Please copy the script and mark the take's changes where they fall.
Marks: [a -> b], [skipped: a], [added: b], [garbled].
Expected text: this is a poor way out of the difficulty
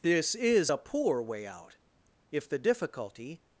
this is a poor way out [of -> if] the difficulty